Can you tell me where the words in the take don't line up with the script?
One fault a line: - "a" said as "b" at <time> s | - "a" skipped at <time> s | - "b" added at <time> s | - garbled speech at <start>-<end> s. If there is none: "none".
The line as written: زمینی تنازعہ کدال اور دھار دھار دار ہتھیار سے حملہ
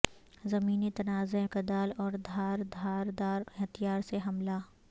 none